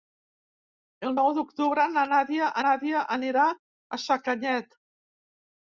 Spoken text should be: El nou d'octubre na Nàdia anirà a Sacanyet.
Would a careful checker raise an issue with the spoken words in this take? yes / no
yes